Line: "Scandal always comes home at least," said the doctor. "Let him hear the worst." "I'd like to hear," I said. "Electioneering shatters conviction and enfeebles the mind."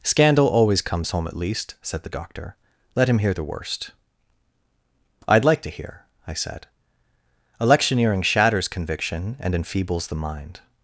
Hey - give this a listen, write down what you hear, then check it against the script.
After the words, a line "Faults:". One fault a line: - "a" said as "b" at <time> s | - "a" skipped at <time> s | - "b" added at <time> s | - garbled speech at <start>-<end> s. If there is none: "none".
"Scandal always comes home at least," said the doctor. "Let him hear the worst." "I'd like to hear," I said. "Electioneering shatters conviction and enfeebles the mind."
Faults:
none